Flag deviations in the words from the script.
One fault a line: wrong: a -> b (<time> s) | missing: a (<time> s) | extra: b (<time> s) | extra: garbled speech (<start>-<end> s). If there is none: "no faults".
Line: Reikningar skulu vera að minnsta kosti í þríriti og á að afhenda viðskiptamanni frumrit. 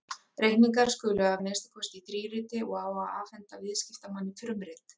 missing: vera (1.3 s)